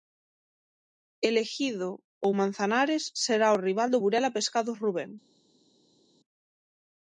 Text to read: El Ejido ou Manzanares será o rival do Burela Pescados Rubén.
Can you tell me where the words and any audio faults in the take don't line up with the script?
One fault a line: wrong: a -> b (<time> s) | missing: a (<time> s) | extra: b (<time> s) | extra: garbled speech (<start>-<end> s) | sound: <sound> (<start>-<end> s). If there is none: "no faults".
no faults